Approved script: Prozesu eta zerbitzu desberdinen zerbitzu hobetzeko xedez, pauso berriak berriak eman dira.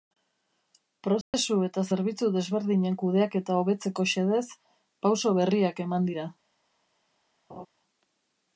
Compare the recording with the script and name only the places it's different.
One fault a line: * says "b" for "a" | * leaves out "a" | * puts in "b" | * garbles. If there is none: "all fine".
* says "kudeaketa" for "zerbitzu"
* leaves out "berriak"